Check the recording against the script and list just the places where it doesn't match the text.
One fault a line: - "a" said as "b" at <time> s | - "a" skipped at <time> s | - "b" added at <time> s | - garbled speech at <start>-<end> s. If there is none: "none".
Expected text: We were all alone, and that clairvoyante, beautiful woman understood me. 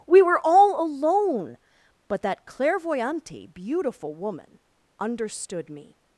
- "and" said as "but" at 2.1 s